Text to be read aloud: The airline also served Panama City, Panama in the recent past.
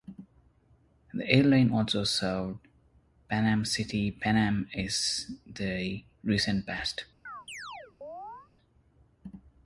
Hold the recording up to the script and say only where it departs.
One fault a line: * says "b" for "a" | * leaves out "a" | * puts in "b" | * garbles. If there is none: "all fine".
all fine